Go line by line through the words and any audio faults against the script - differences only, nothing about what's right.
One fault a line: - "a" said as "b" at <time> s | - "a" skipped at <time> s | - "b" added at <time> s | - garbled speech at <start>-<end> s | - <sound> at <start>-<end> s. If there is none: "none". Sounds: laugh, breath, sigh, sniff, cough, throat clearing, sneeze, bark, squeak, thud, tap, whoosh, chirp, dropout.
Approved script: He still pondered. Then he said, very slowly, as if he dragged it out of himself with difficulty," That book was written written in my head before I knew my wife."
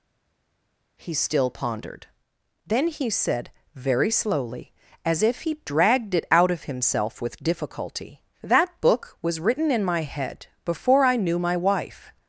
- "written" skipped at 9.7 s